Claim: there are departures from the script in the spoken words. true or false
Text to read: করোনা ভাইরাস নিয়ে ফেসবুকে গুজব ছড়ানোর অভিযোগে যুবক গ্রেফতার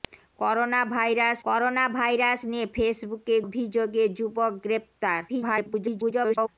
true